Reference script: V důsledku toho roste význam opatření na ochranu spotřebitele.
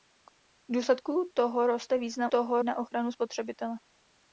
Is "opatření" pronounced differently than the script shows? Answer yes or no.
yes